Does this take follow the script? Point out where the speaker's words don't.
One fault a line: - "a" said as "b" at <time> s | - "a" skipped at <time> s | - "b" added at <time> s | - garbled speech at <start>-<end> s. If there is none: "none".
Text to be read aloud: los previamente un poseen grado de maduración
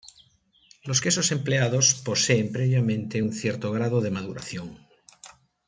- "quesos empleados poseen" added at 1.0 s
- "poseen" said as "cierto" at 3.3 s